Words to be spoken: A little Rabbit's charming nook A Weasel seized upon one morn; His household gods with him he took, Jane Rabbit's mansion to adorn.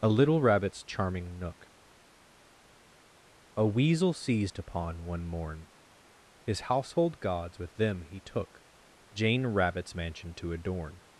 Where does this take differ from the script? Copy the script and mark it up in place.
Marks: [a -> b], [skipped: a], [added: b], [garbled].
A little Rabbit's charming nook A Weasel seized upon one morn; His household gods with [him -> them] he took, Jane Rabbit's mansion to adorn.